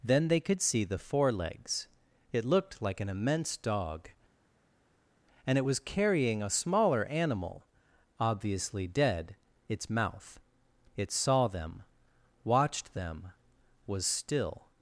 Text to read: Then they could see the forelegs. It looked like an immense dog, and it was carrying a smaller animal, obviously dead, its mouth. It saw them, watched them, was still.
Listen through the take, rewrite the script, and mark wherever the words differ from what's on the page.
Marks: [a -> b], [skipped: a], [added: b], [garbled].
Then they could see the forelegs. It looked like an immense dog, and it was carrying a smaller animal, obviously dead, its mouth. It saw them, watched them, was still.